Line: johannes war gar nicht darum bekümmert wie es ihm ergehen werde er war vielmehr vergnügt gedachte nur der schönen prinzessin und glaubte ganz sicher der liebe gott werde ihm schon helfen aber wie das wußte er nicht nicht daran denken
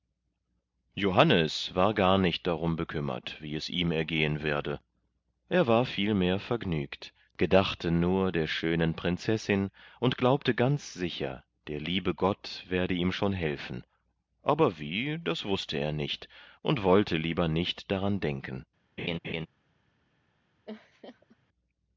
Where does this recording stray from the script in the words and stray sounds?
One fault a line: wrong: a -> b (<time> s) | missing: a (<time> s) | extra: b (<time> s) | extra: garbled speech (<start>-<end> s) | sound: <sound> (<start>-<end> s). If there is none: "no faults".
extra: und wollte lieber (16.6 s)
sound: laugh (19.0-19.5 s)
sound: laugh (20.7-21.4 s)